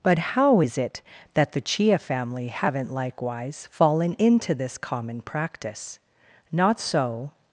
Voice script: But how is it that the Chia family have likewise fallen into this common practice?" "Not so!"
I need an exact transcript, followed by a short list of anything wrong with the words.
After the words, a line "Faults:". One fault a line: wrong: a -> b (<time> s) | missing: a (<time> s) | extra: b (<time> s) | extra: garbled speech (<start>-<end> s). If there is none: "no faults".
But how is it that the Chia family haven't likewise fallen into this common practice?" "Not so!"
Faults:
wrong: have -> haven't (2.5 s)